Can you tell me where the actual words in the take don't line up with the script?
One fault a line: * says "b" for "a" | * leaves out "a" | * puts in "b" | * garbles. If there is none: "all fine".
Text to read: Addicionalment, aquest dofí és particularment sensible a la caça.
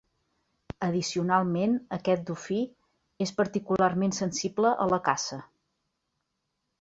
all fine